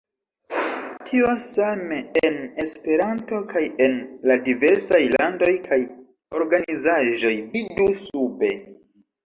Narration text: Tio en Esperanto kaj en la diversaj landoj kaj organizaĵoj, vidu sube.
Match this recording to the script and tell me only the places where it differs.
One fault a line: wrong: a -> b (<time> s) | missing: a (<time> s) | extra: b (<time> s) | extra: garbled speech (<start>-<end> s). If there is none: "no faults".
extra: same (1.5 s)